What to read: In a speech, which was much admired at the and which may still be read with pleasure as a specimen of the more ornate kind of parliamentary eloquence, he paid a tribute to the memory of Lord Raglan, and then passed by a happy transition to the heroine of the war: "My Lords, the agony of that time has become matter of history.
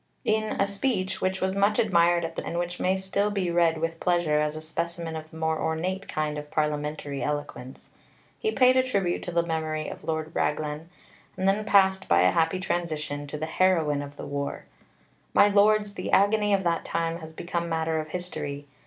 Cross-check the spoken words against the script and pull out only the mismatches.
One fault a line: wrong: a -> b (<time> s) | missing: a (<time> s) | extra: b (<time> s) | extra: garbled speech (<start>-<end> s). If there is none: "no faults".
no faults